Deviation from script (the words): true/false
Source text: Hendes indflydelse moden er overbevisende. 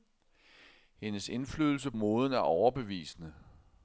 false